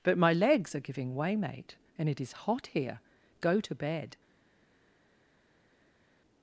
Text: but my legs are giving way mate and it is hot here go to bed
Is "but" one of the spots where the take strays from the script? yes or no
no